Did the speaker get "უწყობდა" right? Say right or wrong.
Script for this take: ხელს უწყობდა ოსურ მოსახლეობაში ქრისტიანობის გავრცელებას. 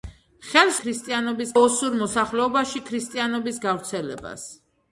wrong